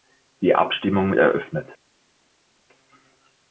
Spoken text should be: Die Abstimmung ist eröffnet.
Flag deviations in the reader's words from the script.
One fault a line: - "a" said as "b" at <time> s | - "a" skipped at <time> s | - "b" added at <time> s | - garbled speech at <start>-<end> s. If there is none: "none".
- "ist" skipped at 1.1 s